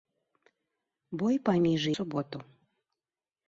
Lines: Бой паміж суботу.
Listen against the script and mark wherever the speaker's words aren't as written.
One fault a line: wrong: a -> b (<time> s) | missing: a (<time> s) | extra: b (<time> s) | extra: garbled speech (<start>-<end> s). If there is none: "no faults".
no faults